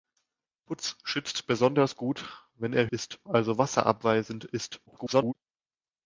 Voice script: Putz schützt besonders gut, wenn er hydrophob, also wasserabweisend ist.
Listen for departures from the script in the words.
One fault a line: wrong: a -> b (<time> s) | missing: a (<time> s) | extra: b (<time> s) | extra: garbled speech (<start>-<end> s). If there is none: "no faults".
wrong: hydrophob -> ist (2.8 s)
extra: garbled speech (4.9-5.3 s)